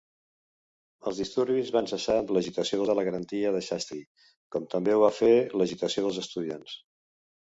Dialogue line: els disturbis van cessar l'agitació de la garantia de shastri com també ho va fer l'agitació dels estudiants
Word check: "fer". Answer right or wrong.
right